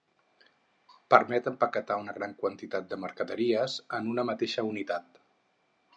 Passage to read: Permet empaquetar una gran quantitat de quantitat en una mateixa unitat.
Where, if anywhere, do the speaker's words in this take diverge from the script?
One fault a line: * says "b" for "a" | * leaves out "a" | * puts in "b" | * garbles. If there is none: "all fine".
* says "mercaderies" for "quantitat"